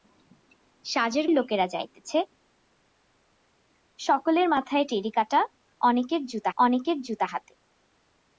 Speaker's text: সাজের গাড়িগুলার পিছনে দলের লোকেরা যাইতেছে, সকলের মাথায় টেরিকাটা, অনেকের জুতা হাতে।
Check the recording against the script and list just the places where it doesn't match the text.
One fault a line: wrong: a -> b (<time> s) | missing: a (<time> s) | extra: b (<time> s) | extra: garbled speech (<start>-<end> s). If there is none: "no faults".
missing: গাড়িগুলার পিছনে দলের (1.2 s)
extra: অনেকের জুতা (6.6 s)